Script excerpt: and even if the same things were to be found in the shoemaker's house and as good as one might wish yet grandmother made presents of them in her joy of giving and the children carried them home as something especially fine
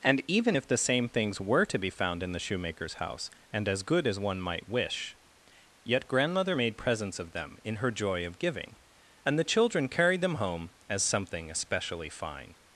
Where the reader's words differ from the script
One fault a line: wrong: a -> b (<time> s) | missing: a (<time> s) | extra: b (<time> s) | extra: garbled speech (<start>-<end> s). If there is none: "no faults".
no faults